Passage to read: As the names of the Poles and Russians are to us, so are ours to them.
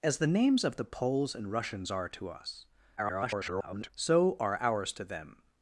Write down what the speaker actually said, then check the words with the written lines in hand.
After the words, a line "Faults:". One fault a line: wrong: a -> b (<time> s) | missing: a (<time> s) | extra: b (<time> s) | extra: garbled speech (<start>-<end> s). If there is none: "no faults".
As the names of the Poles and Russians are to us, [garbled] so are ours to them.
Faults:
extra: garbled speech (3.0-3.9 s)